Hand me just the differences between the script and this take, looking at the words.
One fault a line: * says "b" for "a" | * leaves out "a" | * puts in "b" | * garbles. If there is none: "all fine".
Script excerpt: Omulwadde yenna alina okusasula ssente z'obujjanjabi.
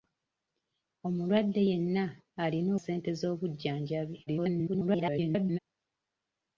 * leaves out "okusasula"
* garbles